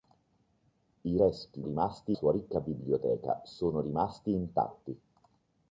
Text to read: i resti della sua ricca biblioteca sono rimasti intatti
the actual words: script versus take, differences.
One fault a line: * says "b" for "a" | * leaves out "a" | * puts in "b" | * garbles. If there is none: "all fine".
* says "rimasti" for "della"